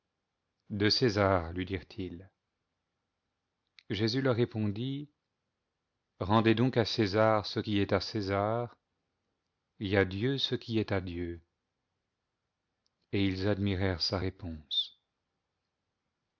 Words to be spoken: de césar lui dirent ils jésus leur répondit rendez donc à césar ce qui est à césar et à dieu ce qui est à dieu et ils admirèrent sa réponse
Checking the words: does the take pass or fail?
pass